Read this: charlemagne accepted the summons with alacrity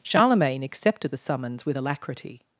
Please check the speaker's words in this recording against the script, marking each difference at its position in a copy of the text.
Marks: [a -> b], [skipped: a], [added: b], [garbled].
charlemagne accepted the summons with alacrity